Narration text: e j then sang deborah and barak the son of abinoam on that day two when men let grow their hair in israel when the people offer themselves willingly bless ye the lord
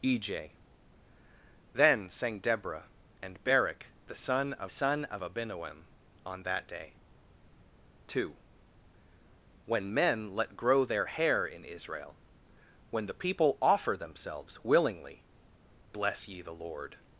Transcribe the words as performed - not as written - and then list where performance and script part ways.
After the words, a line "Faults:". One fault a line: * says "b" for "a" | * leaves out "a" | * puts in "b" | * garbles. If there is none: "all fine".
e j then sang deborah and barak the son of son of abinoam on that day two when men let grow their hair in israel when the people offer themselves willingly bless ye the lord
Faults:
* puts in "son of"